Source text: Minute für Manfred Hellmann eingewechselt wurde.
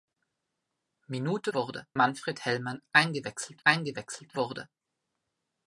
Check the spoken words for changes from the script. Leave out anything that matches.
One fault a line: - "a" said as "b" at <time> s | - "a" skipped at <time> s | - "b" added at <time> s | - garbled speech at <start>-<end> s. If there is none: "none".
- "für" said as "wurde" at 1.5 s
- "eingewechselt" added at 3.6 s